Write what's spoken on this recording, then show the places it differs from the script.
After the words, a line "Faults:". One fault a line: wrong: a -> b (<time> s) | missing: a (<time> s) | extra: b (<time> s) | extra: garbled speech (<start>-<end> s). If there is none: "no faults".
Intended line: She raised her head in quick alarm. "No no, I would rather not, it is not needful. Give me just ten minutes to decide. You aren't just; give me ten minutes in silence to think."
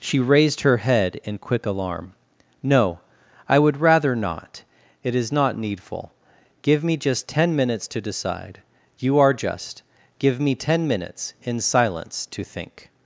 She raised her head in quick alarm. "No, I would rather not, it is not needful. Give me just ten minutes to decide. You are just; give me ten minutes in silence to think."
Faults:
missing: no (3.0 s)
wrong: aren't -> are (9.2 s)